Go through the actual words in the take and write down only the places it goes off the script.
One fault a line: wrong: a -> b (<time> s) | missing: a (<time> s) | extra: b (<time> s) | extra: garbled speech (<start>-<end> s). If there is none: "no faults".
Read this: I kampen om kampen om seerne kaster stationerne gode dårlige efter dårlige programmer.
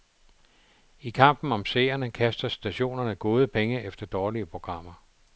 missing: kampen om (1.6 s)
wrong: dårlige -> penge (3.5 s)